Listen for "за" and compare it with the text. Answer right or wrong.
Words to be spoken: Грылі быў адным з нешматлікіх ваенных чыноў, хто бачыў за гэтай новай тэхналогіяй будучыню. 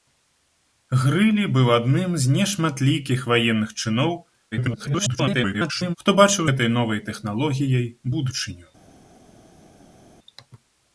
wrong